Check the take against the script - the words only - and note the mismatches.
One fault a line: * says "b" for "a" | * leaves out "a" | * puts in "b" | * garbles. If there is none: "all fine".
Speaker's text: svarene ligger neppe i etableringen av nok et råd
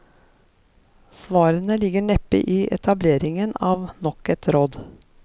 all fine